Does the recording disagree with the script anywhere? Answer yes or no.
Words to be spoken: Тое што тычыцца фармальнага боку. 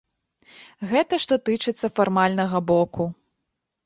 yes